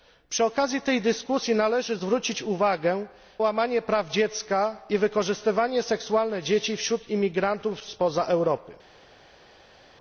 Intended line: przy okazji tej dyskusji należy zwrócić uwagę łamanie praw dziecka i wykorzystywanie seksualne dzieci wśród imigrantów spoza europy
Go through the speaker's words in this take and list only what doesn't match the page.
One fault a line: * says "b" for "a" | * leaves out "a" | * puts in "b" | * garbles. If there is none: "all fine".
all fine